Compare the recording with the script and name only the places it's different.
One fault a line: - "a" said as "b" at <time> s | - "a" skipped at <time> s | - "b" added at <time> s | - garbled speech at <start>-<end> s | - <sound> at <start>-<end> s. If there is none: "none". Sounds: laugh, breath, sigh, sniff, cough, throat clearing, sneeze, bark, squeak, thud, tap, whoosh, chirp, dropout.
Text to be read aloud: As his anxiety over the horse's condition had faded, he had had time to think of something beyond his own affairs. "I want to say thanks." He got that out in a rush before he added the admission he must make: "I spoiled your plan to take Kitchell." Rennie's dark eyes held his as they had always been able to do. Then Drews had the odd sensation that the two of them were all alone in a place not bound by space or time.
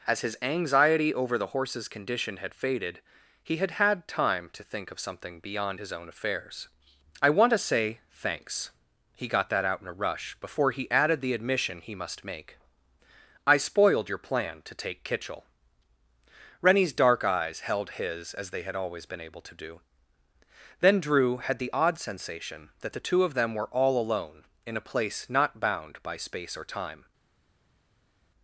- "Drews" said as "Drew" at 21.0 s